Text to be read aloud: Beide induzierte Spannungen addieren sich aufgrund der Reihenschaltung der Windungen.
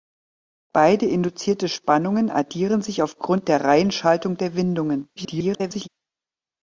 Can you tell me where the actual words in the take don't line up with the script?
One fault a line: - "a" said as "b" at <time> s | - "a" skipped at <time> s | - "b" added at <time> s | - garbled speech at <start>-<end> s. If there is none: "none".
- garbled speech at 5.2-5.9 s